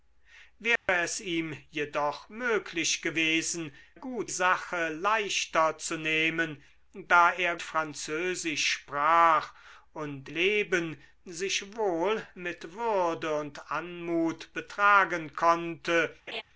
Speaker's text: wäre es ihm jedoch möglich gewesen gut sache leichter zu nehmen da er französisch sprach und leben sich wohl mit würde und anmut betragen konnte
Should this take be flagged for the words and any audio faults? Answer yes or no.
yes